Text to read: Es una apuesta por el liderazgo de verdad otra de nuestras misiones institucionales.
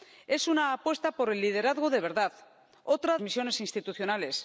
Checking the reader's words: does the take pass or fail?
fail